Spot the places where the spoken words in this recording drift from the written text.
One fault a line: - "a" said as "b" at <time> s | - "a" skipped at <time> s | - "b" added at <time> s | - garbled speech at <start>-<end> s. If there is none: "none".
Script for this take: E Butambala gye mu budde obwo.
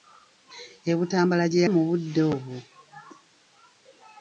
none